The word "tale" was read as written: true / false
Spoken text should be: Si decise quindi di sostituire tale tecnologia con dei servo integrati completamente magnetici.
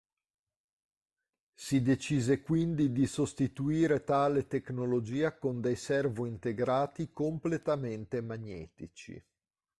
true